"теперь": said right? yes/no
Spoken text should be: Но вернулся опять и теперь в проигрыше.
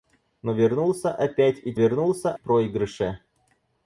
no